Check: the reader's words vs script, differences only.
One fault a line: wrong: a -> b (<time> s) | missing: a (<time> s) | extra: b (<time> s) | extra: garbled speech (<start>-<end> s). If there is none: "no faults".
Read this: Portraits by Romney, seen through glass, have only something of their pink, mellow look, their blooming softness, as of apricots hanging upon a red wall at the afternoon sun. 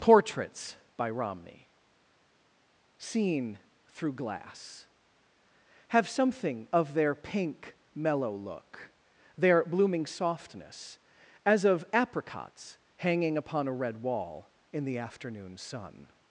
missing: only (6.1 s)
wrong: at -> in (14.7 s)